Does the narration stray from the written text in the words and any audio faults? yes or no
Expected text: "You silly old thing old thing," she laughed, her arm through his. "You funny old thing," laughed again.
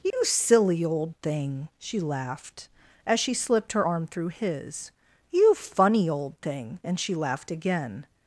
yes